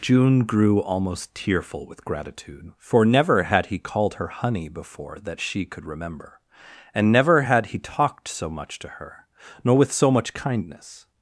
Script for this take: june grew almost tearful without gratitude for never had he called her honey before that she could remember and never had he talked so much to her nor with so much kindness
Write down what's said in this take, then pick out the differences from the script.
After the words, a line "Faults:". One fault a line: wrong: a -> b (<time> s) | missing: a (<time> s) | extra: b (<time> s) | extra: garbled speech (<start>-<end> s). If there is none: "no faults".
june grew almost tearful with gratitude for never had he called her honey before that she could remember and never had he talked so much to her nor with so much kindness
Faults:
wrong: without -> with (1.9 s)